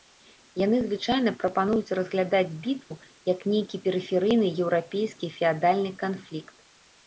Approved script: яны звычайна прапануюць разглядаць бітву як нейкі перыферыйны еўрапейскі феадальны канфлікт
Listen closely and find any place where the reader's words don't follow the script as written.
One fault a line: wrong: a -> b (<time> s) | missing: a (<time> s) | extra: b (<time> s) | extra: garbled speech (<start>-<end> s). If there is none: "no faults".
no faults